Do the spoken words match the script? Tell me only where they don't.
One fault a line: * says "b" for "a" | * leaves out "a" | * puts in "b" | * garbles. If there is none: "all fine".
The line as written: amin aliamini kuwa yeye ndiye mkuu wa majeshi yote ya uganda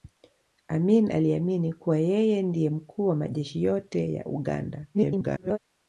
* garbles